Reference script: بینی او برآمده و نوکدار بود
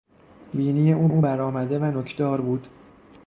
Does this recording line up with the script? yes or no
no